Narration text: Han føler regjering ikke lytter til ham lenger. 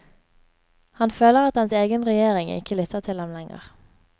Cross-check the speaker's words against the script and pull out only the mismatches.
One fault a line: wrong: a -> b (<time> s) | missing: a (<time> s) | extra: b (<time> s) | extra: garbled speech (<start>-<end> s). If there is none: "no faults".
extra: at hans egen (1.5 s)